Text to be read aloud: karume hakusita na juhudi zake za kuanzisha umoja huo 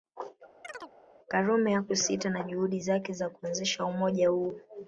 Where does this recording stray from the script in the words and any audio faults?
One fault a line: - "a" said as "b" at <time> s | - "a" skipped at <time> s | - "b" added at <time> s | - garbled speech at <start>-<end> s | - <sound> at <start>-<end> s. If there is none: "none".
- chirp at 0.6-0.9 s